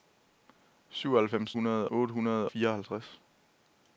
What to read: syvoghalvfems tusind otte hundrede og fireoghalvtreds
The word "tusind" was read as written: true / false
false